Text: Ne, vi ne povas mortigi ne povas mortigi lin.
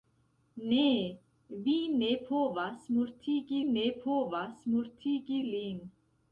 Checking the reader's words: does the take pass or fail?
pass